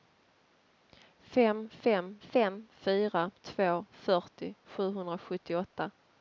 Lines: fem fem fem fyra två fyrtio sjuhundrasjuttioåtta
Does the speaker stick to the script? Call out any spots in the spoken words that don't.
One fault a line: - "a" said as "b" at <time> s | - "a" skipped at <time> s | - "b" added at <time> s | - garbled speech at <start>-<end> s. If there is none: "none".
none